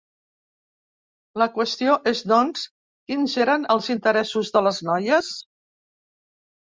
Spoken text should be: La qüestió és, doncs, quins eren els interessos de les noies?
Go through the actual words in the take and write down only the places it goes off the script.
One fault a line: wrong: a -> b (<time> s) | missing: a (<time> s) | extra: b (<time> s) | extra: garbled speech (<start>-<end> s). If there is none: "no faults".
no faults